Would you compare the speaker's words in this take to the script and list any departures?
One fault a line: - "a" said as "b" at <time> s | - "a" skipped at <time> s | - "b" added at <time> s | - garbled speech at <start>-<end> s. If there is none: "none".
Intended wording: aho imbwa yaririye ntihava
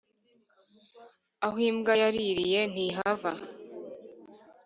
none